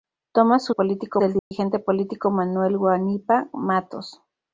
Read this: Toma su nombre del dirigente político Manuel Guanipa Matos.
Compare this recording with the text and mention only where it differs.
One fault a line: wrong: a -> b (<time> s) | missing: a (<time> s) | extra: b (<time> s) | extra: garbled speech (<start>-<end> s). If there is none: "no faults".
wrong: nombre -> político (0.7 s)